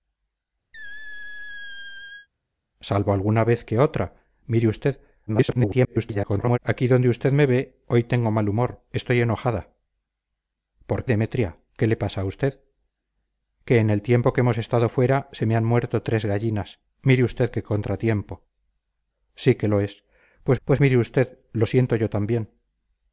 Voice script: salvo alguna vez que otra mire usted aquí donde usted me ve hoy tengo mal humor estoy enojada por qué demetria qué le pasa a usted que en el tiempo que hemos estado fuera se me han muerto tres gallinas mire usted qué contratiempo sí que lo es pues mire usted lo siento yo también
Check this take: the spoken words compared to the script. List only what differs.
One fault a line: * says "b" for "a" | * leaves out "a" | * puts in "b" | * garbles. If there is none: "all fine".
* garbles
* leaves out "qué"
* puts in "pues"